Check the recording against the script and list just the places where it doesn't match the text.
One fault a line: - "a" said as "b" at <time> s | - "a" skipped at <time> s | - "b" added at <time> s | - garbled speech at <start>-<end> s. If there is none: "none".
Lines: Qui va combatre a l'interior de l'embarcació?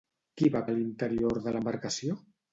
- "combatre" skipped at 0.6 s